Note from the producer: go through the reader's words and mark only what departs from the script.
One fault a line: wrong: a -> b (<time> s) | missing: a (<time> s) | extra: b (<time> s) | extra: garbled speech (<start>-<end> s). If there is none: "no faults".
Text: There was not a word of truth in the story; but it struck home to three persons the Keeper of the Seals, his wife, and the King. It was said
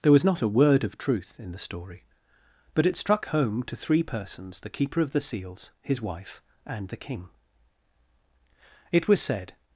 no faults